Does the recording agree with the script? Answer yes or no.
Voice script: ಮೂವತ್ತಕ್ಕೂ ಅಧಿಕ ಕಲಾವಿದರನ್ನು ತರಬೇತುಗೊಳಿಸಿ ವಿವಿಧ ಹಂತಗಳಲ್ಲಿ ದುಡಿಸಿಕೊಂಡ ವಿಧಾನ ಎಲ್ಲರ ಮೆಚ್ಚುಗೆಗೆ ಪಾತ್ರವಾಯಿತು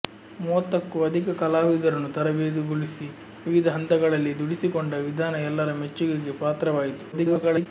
no